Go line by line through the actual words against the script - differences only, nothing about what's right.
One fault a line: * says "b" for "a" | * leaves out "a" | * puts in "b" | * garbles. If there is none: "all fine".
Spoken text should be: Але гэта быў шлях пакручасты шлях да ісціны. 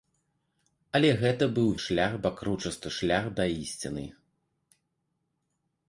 all fine